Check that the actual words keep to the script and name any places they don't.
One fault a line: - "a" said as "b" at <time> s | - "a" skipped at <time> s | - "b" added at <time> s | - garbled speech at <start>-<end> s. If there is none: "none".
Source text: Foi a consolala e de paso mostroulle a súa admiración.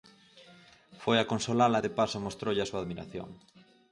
none